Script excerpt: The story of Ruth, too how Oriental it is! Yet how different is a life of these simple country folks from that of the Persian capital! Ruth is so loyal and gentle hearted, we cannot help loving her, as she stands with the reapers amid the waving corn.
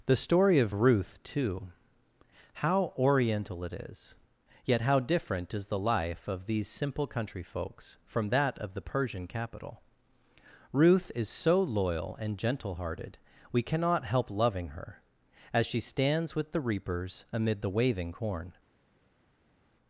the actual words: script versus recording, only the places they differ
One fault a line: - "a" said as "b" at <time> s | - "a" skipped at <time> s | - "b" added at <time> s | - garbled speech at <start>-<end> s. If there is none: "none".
- "a" said as "the" at 5.7 s